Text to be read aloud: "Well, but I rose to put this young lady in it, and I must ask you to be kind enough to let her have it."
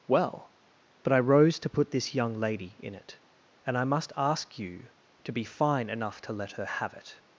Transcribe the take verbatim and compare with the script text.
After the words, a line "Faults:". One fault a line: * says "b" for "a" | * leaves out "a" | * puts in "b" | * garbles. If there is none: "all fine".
"Well, but I rose to put this young lady in it, and I must ask you to be fine enough to let her have it."
Faults:
* says "fine" for "kind"